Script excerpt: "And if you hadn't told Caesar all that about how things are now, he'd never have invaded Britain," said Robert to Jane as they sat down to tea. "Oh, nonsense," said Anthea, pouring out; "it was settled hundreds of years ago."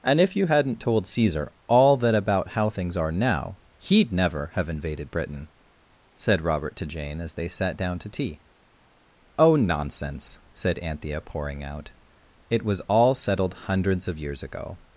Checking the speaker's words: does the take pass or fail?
fail